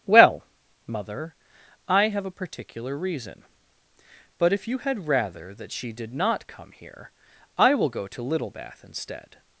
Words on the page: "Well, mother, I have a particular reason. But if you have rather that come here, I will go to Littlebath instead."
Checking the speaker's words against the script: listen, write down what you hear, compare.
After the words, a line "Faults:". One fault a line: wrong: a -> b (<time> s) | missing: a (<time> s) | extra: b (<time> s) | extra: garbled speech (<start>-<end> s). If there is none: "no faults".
"Well, mother, I have a particular reason. But if you had rather that she did not come here, I will go to Littlebath instead."
Faults:
wrong: have -> had (4.8 s)
extra: she did not (5.7 s)